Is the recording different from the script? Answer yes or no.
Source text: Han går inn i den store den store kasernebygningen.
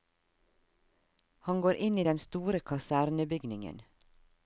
yes